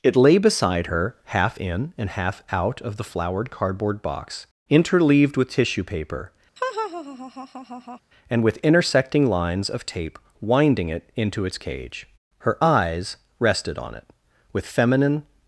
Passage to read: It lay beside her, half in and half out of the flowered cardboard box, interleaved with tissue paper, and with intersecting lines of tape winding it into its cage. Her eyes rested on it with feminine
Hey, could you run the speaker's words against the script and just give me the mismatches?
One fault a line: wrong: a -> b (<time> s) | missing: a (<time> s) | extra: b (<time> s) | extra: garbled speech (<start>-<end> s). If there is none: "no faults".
no faults